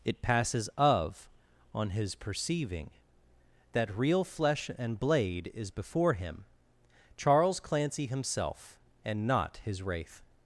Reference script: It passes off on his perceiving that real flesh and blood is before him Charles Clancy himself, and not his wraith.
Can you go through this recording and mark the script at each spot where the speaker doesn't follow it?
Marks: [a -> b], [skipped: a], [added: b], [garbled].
It passes [off -> of] on his perceiving that real flesh and [blood -> blade] is before him Charles Clancy himself, and not his wraith.